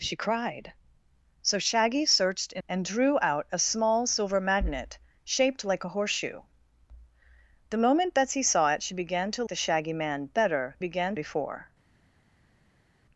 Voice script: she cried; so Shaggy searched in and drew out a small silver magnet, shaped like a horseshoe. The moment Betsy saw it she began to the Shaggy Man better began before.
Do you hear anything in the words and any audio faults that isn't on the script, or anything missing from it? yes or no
no